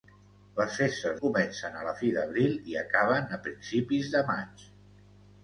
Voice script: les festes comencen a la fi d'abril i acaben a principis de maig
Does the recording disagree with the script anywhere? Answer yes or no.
no